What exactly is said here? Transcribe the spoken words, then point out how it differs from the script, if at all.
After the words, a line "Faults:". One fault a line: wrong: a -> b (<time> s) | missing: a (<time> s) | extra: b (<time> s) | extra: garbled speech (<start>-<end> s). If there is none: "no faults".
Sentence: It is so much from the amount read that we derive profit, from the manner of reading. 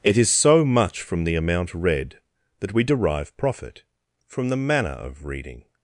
It is so much from the amount read that we derive profit, from the manner of reading.
Faults:
no faults